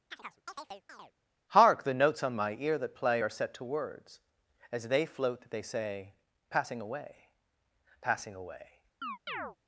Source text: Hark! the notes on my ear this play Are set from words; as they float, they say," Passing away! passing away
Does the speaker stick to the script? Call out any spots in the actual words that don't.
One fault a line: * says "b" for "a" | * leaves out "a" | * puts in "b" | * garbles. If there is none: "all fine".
* says "that" for "this"
* says "to" for "from"